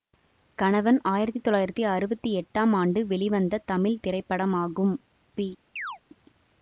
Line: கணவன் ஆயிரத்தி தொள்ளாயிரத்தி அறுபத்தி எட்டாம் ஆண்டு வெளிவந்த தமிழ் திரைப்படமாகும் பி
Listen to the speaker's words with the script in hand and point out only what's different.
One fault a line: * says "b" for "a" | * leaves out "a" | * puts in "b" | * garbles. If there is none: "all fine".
all fine